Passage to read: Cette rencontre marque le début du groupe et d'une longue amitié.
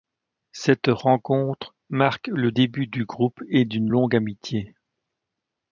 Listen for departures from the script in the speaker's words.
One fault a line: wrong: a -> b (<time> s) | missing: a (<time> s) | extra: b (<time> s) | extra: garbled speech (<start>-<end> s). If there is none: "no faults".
no faults